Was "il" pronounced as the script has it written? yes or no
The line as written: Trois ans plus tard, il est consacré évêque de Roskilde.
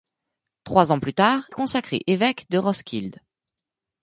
no